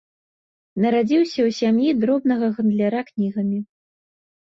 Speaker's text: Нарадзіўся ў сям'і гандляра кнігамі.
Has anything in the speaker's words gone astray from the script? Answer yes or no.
yes